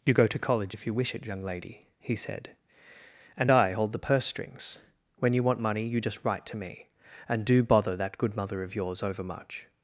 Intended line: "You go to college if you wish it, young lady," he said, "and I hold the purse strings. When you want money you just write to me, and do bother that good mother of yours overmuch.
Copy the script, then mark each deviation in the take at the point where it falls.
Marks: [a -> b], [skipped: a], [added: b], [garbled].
"You go to college if you wish it, young lady," he said, "and I hold the purse strings. When you want money you just write to me, and do bother that good mother of yours overmuch.